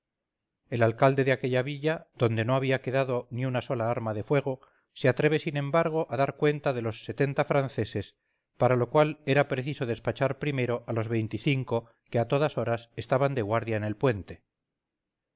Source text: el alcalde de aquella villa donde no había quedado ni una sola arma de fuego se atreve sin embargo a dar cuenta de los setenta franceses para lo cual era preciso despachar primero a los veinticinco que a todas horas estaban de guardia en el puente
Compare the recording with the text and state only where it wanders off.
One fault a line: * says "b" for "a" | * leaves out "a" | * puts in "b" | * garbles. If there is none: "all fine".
all fine